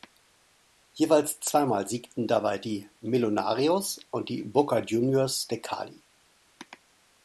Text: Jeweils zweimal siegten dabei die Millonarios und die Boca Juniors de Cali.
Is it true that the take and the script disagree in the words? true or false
false